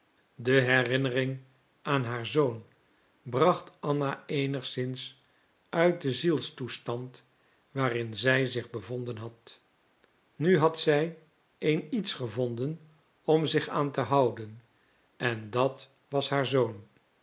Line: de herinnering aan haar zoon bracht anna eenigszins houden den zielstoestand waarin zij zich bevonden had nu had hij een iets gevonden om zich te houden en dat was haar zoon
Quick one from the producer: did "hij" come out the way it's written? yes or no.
no